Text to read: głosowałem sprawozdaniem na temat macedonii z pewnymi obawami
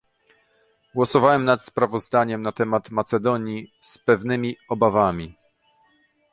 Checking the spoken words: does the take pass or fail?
fail